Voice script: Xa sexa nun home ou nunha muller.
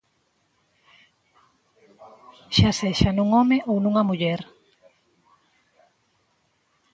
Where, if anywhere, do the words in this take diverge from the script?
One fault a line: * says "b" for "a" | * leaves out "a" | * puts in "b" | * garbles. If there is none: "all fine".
all fine